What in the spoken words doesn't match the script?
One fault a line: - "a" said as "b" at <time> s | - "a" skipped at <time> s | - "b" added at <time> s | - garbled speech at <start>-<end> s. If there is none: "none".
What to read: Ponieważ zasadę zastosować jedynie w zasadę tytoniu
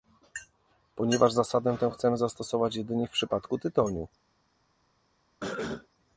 - "tę chcemy" added at 1.8 s
- "zasadę" said as "przypadku" at 3.1 s